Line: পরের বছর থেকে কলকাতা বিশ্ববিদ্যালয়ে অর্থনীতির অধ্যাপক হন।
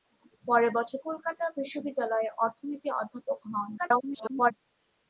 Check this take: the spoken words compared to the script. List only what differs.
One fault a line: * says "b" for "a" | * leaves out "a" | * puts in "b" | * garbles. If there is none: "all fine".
* leaves out "থেকে"
* garbles